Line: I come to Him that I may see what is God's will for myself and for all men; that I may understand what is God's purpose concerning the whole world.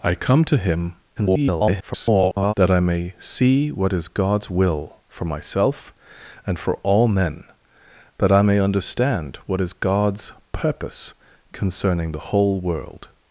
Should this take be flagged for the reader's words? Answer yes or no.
yes